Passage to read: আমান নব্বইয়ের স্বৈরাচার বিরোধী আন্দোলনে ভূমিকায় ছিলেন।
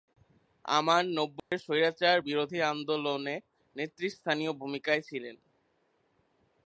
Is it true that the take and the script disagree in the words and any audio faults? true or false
true